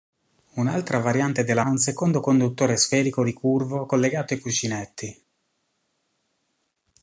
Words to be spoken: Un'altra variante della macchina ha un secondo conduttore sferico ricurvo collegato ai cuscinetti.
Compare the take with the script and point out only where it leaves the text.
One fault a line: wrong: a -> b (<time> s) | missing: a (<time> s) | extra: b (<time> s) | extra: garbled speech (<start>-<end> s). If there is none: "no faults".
missing: macchina (1.6 s)